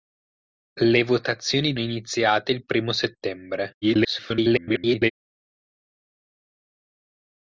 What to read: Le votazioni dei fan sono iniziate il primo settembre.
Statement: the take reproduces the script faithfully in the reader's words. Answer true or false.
false